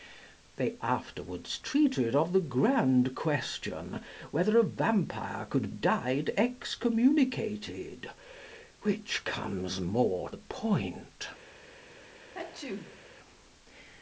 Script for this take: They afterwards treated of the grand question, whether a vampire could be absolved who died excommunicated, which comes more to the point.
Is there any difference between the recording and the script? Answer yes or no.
yes